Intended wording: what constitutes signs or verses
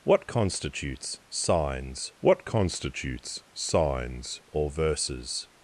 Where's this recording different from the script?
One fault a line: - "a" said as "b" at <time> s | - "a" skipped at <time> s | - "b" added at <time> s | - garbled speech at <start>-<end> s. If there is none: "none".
- "what constitutes signs" added at 2.2 s